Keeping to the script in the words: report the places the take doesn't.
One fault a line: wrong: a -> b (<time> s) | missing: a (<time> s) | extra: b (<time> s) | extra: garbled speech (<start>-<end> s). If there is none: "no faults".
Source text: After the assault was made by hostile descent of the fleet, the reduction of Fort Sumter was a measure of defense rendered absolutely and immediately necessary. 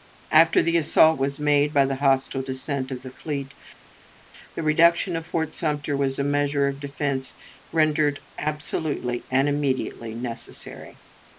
extra: the (1.9 s)